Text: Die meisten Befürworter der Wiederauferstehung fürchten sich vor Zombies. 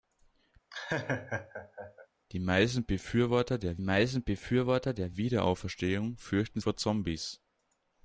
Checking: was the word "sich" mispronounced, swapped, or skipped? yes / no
yes